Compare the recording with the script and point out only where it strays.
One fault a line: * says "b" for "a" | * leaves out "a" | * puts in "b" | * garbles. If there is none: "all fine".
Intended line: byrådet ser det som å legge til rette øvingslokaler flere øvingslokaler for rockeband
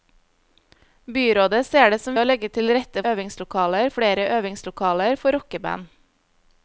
all fine